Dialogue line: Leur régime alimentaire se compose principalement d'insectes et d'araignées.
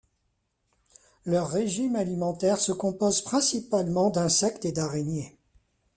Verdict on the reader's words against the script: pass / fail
pass